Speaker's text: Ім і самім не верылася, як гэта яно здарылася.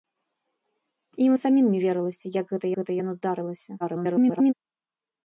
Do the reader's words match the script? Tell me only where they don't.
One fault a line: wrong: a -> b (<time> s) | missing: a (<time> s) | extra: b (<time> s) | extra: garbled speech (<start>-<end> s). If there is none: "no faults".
extra: гэта (2.8 s)
extra: garbled speech (3.8-4.5 s)